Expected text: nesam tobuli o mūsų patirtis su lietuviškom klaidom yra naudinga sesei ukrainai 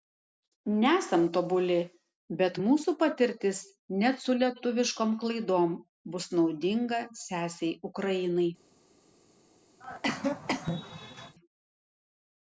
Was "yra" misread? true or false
true